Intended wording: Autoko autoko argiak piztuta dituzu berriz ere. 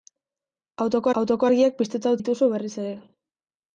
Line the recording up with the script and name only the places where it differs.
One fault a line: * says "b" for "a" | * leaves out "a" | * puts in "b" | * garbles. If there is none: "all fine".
all fine